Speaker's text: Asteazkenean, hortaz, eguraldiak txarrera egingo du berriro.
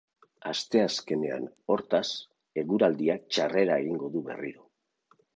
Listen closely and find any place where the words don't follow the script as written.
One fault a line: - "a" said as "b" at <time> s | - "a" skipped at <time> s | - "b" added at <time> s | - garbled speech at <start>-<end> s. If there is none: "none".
none